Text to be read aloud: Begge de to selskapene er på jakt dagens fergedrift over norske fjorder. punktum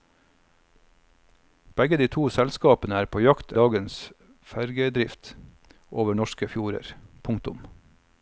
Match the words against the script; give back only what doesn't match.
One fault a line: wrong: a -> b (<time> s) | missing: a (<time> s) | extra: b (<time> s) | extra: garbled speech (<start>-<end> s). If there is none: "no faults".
no faults